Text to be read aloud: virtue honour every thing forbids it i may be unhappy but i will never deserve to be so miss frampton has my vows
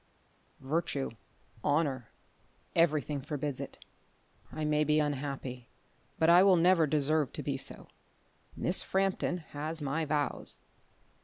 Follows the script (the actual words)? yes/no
yes